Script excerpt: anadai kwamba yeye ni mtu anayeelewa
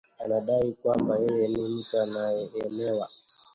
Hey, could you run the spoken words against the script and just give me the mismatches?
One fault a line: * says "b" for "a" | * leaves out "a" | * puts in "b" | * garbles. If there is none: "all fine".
all fine